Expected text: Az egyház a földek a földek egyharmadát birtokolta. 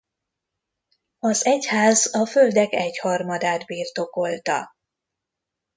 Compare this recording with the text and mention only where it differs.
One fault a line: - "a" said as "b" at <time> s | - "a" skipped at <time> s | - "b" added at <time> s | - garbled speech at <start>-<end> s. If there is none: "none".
- "a földek" skipped at 2.7 s